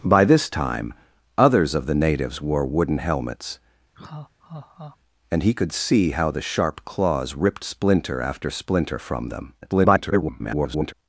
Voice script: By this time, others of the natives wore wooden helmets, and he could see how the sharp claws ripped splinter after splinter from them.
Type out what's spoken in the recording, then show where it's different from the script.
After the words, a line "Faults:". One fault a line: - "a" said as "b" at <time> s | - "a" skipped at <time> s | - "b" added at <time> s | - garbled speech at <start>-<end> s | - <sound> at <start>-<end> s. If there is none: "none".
By this time, others of the natives wore wooden helmets, and he could see how the sharp claws ripped splinter after splinter from them. [garbled]
Faults:
- laugh at 3.9-5.0 s
- garbled speech at 9.6-10.9 s